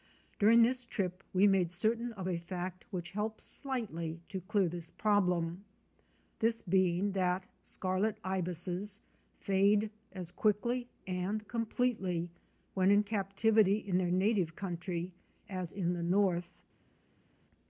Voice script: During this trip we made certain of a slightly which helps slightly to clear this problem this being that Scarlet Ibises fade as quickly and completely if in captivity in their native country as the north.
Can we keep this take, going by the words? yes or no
no